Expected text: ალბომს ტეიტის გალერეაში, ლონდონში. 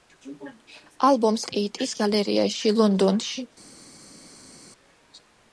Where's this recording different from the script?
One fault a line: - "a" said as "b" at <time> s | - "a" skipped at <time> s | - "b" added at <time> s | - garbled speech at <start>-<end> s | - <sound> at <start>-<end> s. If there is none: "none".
none